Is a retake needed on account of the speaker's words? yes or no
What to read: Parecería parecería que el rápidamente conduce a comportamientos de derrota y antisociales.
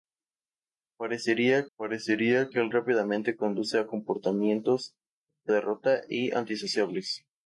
no